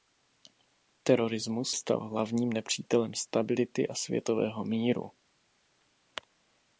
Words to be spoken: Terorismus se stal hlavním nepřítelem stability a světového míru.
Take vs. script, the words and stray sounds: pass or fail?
fail